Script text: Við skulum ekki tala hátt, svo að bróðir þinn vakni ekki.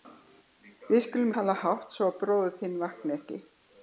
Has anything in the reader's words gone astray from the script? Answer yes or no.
yes